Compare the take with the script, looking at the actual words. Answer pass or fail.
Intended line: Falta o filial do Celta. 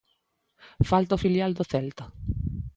pass